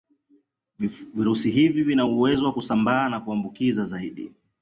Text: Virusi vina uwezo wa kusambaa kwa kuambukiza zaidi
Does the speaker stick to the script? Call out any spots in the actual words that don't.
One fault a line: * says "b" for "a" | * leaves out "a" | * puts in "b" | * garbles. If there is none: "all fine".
* puts in "hivi"
* says "na" for "kwa"